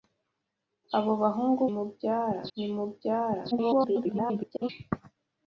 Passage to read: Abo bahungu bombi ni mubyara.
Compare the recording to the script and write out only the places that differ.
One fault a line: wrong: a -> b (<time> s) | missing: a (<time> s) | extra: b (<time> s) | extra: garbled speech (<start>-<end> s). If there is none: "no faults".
wrong: bombi -> mubyara (1.7 s)
extra: garbled speech (3.5-4.7 s)